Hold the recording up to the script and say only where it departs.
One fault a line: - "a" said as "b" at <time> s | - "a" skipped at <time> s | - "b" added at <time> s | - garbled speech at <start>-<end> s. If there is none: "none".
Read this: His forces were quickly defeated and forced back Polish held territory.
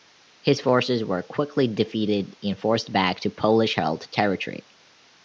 - "to" added at 3.2 s